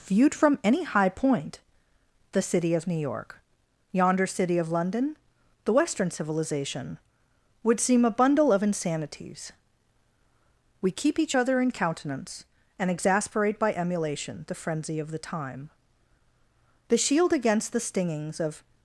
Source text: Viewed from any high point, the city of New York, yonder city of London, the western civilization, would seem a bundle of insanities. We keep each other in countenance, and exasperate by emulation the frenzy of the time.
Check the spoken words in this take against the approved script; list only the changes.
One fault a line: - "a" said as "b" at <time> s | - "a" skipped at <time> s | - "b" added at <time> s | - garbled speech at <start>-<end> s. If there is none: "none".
- "The shield against the stingings of" added at 16.9 s